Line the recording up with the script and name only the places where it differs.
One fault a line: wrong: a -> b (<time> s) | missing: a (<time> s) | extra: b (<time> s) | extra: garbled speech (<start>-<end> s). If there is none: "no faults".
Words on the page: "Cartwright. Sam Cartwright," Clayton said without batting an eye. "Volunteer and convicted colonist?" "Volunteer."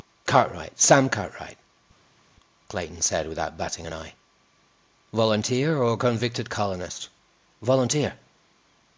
wrong: and -> or (5.8 s)